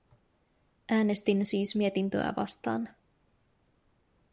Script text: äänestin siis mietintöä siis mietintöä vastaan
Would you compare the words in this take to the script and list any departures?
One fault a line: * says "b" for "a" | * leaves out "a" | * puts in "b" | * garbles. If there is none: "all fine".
* leaves out "siis mietintöä"